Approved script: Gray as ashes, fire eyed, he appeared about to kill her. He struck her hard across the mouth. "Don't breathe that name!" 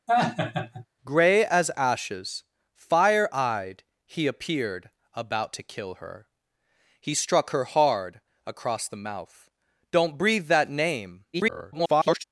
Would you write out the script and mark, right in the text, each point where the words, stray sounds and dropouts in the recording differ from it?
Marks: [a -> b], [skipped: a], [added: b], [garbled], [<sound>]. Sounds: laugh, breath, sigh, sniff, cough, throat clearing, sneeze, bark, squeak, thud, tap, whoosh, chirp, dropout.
[laugh] Gray as ashes, fire eyed, he appeared about to kill her. He struck her hard across the mouth. "Don't breathe that name!" [garbled]